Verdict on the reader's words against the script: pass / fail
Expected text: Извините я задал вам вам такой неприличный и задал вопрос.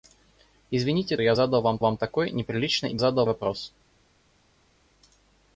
pass